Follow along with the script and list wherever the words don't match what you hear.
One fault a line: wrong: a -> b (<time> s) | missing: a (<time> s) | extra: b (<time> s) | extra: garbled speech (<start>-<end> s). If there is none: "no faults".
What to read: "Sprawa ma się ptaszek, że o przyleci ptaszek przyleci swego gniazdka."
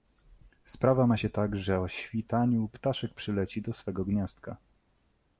wrong: ptaszek -> tak (1.3 s)
wrong: przyleci -> świtaniu (1.9 s)
extra: do (3.6 s)